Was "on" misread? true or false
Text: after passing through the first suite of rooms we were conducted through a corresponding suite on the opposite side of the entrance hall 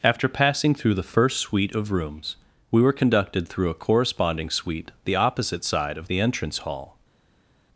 true